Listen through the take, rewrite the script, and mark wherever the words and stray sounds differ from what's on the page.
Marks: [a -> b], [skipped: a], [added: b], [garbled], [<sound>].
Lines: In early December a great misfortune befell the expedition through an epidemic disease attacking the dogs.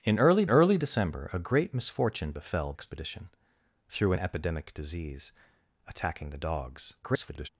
In early [added: early] December a great misfortune befell [skipped: the] expedition through an epidemic disease attacking the dogs. [garbled]